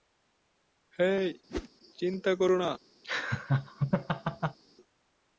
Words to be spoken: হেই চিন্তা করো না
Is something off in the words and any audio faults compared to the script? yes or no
yes